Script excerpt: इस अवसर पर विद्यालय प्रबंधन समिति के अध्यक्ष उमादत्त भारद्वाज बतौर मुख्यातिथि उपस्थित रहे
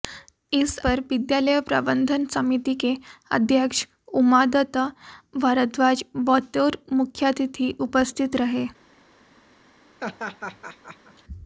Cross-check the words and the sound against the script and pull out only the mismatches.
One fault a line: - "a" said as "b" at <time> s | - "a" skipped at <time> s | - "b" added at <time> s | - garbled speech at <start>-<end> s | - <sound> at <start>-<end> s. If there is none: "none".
- "अवसर" skipped at 0.8 s
- laugh at 10.0-11.2 s